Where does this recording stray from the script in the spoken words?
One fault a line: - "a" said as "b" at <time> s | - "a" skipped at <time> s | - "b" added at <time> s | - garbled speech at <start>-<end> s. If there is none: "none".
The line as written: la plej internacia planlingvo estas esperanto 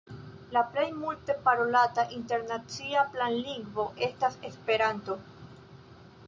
- "multe parolata" added at 1.0 s